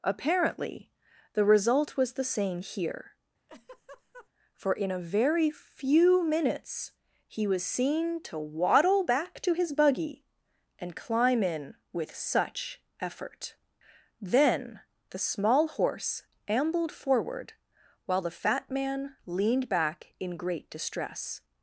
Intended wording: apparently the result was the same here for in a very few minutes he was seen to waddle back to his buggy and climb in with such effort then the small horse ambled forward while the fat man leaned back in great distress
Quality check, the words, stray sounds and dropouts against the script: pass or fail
fail